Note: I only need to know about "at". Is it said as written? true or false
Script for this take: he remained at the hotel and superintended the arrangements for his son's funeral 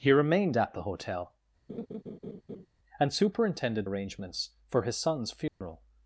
true